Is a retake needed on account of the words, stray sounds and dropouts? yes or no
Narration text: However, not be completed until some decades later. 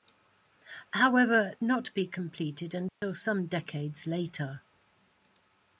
yes